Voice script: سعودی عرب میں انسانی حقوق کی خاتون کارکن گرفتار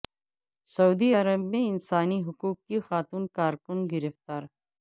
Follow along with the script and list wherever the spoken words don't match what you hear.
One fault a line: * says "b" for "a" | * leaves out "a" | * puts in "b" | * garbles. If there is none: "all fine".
all fine